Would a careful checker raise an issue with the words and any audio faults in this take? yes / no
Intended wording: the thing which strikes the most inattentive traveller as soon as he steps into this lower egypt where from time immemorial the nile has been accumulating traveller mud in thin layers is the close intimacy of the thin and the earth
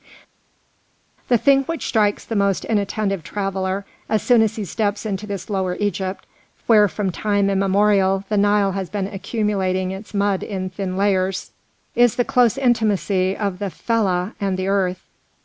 yes